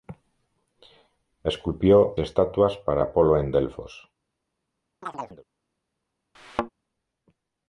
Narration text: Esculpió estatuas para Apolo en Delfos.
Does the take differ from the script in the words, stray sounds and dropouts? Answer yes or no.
yes